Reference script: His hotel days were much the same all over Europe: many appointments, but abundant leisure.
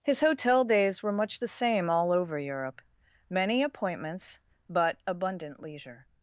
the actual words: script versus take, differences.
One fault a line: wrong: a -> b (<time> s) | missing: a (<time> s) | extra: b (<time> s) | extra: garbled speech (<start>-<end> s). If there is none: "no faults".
no faults